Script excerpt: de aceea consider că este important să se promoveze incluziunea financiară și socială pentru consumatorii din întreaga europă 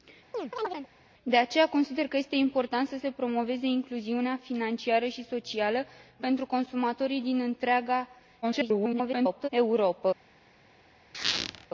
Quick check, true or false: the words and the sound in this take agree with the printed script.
false